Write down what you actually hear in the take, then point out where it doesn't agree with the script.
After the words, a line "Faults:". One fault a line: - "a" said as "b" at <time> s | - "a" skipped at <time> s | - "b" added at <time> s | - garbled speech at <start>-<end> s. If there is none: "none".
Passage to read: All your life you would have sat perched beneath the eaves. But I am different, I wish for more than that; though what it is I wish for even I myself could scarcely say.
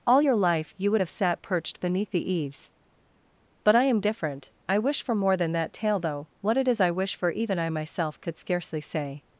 All your life you would have sat perched beneath the eaves. But I am different, I wish for more than that; tale though what it is I wish for even I myself could scarcely say.
Faults:
- "tale" added at 5.7 s